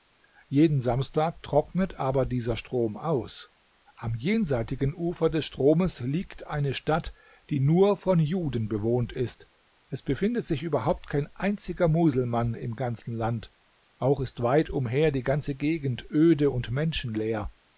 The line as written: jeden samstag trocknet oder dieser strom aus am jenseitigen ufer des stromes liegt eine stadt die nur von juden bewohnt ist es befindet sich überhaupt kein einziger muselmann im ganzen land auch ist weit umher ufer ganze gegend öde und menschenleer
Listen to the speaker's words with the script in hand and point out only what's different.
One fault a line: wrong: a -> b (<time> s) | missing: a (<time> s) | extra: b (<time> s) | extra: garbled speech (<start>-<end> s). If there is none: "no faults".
wrong: oder -> aber (2.0 s)
wrong: ufer -> die (15.1 s)